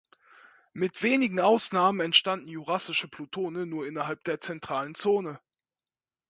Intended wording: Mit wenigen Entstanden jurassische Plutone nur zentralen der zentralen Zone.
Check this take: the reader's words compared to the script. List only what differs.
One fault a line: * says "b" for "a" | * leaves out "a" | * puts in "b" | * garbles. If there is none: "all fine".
* puts in "Ausnahmen"
* says "innerhalb" for "zentralen"